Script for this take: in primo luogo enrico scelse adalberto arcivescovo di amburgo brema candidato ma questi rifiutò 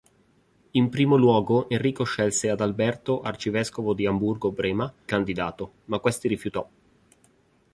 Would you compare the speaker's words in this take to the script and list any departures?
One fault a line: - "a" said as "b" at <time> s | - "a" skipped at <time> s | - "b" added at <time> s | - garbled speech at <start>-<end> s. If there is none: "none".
none